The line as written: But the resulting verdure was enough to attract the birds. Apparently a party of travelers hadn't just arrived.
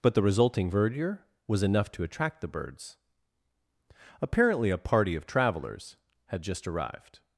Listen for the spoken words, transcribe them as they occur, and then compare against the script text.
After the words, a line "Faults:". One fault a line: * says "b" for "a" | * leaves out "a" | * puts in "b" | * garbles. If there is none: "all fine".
But the resulting verdure was enough to attract the birds. Apparently a party of travelers had just arrived.
Faults:
* says "had" for "hadn't"